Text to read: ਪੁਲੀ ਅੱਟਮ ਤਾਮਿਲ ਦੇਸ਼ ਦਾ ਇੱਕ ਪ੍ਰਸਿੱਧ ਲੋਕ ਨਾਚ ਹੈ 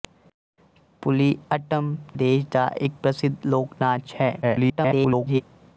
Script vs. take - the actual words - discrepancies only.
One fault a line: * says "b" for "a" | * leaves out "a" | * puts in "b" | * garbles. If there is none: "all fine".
* leaves out "ਤਾਮਿਲ"
* garbles